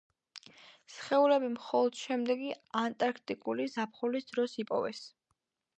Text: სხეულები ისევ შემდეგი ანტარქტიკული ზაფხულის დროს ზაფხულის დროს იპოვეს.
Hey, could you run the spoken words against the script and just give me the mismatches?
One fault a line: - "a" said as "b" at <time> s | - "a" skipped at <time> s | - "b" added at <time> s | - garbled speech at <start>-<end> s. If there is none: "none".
- "ისევ" said as "მხოლოდ" at 1.6 s
- "ზაფხულის დროს" skipped at 4.6 s